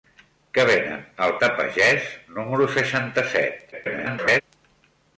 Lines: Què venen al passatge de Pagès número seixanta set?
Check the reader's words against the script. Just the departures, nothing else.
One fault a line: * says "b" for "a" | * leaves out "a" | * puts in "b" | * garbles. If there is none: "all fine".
* leaves out "passatge"
* garbles